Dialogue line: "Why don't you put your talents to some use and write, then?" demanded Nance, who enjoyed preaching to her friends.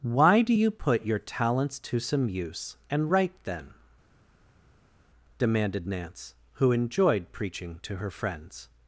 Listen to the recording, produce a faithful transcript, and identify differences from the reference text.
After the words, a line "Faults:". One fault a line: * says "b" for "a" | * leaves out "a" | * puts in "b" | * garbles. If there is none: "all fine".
"Why do you put your talents to some use and write, then?" demanded Nance, who enjoyed preaching to her friends.
Faults:
* says "do" for "don't"